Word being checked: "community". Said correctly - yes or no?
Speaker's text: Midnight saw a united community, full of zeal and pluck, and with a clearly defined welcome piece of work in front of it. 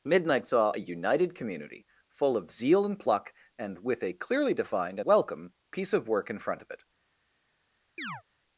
yes